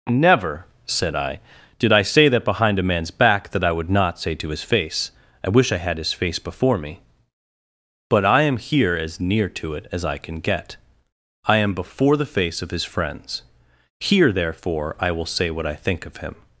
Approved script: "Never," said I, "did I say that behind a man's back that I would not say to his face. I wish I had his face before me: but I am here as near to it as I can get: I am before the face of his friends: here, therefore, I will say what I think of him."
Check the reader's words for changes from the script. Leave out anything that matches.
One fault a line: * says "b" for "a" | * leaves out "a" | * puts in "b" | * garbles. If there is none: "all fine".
all fine